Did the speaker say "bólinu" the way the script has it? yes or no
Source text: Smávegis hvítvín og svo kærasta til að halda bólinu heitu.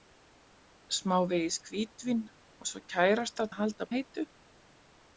no